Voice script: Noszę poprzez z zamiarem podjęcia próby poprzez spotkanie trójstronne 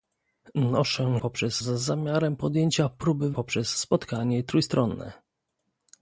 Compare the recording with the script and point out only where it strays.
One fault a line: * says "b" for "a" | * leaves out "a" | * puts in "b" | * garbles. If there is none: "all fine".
all fine